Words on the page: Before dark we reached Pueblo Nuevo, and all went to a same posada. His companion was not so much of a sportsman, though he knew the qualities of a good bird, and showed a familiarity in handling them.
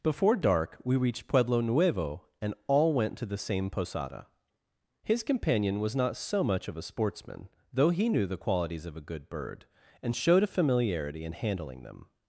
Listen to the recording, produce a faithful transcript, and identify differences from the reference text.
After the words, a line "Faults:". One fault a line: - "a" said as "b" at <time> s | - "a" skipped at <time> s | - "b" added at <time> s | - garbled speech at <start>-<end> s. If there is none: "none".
Before dark we reached Pueblo Nuevo, and all went to the same posada. His companion was not so much of a sportsman, though he knew the qualities of a good bird, and showed a familiarity in handling them.
Faults:
- "a" said as "the" at 3.2 s